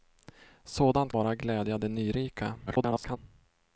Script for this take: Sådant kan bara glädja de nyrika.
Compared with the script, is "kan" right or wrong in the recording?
wrong